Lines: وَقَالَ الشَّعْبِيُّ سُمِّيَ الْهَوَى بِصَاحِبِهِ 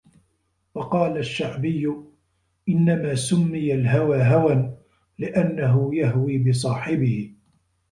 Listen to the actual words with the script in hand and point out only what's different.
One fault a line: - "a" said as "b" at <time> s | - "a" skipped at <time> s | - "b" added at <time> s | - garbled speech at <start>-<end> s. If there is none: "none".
- "إنَّمَا" added at 2.7 s
- "هَوًى لِأَنَّهُ يَهْوِي" added at 4.2 s